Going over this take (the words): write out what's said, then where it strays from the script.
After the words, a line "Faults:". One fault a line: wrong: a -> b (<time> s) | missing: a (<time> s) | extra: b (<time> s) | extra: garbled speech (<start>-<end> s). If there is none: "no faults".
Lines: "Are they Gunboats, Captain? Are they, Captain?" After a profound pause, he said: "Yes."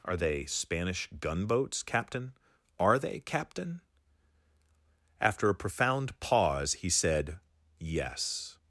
"Are they Spanish gunboats, Captain? Are they, Captain?" After a profound pause, he said: "Yes."
Faults:
extra: Spanish (0.5 s)